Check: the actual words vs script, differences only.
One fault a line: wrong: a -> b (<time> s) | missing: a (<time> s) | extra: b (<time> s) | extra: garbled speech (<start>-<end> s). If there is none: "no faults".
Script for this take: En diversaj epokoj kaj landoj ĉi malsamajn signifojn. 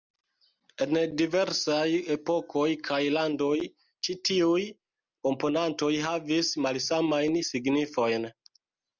extra: tiuj komponantoj havis (4.3 s)